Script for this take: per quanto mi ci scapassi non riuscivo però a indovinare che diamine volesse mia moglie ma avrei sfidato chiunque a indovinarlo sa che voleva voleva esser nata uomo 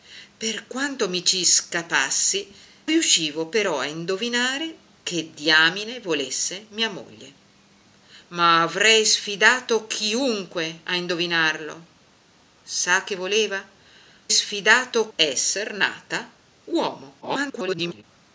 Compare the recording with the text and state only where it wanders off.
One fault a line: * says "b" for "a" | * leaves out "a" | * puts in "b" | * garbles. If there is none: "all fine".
* leaves out "non"
* says "sfidato" for "voleva"
* garbles